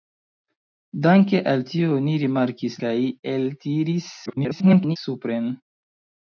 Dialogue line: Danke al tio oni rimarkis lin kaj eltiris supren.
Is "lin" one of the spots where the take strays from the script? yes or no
yes